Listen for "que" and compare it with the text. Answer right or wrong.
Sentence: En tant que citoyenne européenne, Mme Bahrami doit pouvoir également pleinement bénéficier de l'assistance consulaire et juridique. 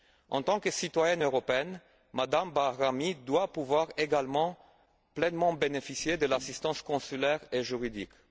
right